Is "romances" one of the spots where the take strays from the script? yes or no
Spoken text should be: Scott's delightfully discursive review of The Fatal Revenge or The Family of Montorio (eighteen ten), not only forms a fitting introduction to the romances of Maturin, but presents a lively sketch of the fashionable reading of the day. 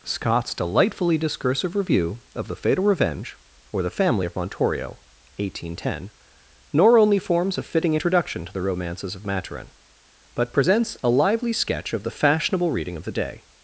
no